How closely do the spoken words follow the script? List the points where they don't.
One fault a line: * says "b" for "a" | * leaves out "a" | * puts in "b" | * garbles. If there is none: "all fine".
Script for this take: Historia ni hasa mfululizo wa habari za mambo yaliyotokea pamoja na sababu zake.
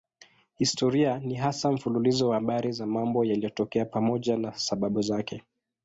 all fine